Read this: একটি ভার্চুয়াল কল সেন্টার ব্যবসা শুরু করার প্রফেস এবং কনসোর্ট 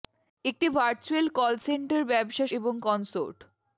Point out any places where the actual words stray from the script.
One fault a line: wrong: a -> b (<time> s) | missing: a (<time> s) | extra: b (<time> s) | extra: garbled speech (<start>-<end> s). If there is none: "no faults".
missing: শুরু করার প্রফেস (2.5 s)